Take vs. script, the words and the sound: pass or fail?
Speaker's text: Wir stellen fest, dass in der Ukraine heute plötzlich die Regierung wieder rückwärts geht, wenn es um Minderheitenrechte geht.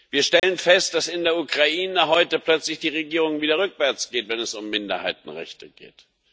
fail